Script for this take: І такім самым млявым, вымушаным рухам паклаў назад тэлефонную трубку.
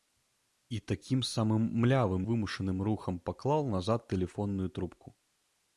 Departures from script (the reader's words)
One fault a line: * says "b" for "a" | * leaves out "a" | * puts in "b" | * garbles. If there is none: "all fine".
all fine